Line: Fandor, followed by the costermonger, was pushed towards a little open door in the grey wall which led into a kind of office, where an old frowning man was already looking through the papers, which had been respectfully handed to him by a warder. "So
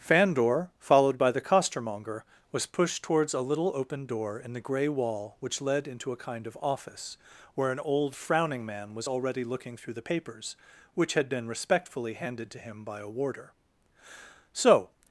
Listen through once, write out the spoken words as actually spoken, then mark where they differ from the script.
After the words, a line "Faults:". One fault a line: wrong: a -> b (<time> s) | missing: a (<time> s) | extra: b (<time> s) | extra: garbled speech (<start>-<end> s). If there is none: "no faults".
Fandor, followed by the costermonger, was pushed towards a little open door in the grey wall which led into a kind of office, where an old frowning man was already looking through the papers, which had been respectfully handed to him by a warder. "So
Faults:
no faults